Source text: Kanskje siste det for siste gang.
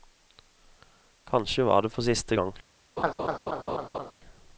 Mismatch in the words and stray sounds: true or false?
true